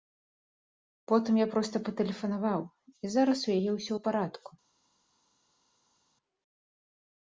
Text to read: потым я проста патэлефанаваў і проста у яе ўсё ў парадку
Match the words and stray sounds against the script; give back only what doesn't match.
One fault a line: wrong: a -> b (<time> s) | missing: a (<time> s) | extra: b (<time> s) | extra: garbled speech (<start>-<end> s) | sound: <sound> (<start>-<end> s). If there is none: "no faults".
wrong: проста -> зараз (3.2 s)